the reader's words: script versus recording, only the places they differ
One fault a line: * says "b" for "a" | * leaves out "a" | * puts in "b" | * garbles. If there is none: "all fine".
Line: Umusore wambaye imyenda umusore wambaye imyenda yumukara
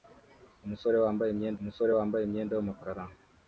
all fine